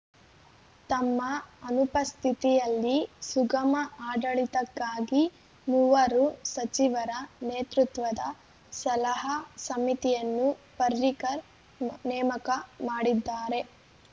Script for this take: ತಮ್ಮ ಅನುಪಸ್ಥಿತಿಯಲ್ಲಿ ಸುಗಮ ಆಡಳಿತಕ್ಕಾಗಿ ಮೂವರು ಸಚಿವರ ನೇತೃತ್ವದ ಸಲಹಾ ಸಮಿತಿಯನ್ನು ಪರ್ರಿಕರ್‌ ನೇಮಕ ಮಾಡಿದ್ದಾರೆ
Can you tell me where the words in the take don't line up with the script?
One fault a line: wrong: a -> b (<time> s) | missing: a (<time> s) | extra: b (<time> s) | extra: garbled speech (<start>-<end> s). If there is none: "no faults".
no faults